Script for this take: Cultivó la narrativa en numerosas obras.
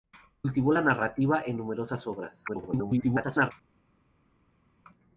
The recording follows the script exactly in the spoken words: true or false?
false